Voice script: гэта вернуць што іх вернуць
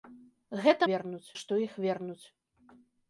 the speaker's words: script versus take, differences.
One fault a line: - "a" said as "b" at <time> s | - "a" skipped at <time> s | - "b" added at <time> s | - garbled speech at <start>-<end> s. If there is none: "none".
none